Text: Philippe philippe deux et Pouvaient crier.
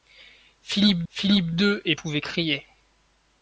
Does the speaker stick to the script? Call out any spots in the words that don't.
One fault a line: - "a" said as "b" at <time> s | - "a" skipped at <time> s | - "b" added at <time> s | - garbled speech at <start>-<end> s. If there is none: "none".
none